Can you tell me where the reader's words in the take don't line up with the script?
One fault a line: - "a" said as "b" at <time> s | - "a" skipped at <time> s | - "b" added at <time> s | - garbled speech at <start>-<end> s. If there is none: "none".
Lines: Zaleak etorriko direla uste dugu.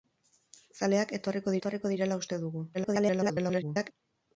- "etorriko" added at 1.6 s
- garbled speech at 2.7-3.9 s